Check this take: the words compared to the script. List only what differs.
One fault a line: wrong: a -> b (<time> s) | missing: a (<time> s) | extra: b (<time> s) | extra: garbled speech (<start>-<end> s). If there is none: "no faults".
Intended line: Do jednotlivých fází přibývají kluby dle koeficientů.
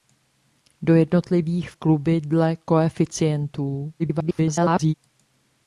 missing: fází přibývají (1.7 s)
extra: garbled speech (4.0-4.9 s)